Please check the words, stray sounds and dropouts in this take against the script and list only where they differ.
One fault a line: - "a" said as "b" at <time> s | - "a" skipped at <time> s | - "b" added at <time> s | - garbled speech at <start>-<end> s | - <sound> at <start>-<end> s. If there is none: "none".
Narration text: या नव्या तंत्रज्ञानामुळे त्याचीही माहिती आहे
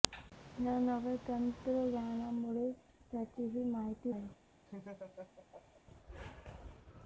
- laugh at 4.7-5.8 s